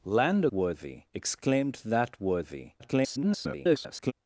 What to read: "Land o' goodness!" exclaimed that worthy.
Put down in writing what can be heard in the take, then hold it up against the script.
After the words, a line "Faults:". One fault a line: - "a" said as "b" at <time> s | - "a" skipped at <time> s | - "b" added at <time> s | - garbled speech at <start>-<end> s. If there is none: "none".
"Land o' worthy!" exclaimed that worthy. [garbled]
Faults:
- "goodness" said as "worthy" at 0.5 s
- garbled speech at 2.8-4.1 s